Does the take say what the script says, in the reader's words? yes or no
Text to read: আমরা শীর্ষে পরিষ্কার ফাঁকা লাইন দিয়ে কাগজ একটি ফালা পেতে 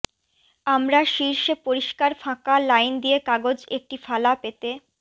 yes